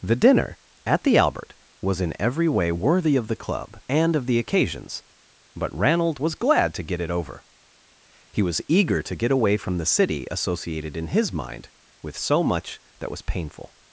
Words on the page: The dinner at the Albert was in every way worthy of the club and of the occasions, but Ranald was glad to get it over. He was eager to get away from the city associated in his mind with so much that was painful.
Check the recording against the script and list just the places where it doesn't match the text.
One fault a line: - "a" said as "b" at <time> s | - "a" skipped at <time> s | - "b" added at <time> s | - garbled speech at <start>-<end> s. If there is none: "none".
none